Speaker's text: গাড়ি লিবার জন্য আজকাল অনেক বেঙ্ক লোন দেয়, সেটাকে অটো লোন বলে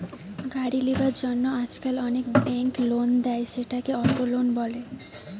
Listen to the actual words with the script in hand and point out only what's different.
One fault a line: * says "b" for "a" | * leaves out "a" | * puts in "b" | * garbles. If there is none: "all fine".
all fine